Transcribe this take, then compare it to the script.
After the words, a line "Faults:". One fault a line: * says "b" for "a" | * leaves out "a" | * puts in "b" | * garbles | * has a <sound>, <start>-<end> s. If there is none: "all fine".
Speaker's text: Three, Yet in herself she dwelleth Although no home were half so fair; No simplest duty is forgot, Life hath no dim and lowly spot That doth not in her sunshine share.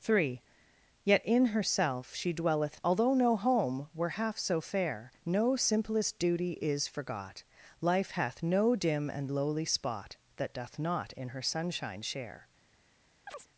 Three, Yet in herself she dwelleth Although no home were half so fair; No simplest duty is forgot, Life hath no dim and lowly spot That doth not in her sunshine share.
Faults:
* has a chirp, 13.3-13.5 s